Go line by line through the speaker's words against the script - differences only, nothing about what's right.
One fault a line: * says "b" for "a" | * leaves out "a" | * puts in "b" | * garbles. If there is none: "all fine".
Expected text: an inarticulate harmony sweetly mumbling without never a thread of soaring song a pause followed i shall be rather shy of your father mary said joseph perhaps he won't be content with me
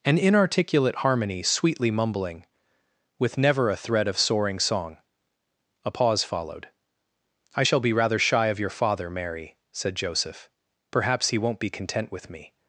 * says "with" for "without"